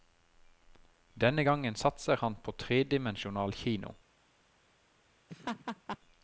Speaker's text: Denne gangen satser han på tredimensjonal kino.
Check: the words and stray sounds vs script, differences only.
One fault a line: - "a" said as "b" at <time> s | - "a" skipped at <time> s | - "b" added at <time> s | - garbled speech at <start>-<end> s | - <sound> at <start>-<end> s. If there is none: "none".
- laugh at 5.3-6.0 s